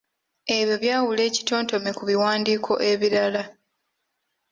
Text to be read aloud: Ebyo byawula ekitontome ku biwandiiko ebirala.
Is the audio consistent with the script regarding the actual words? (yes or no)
yes